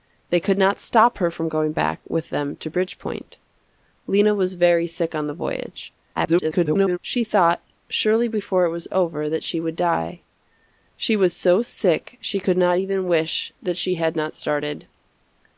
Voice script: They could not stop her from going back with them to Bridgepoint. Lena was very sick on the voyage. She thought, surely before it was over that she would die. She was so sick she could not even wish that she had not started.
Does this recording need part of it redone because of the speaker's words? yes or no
yes